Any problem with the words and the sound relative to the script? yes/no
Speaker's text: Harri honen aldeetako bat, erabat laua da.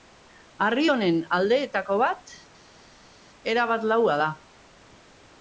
no